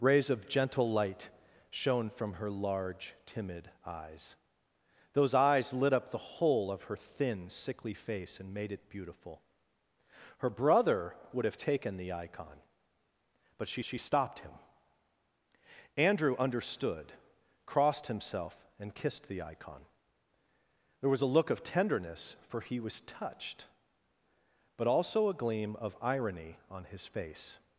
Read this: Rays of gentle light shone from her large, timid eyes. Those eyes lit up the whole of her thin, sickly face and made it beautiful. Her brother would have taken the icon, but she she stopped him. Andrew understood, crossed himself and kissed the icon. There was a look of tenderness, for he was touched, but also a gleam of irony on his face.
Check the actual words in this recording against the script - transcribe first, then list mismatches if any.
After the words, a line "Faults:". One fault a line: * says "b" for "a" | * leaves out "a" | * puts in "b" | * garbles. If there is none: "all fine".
Rays of gentle light shone from her large, timid eyes. Those eyes lit up the whole of her thin, sickly face and made it beautiful. Her brother would have taken the icon, but she she stopped him. Andrew understood, crossed himself and kissed the icon. There was a look of tenderness, for he was touched, but also a gleam of irony on his face.
Faults:
all fine